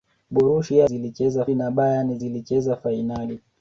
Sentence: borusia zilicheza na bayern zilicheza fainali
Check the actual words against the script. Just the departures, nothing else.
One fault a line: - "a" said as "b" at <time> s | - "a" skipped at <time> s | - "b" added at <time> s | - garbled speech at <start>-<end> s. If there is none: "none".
none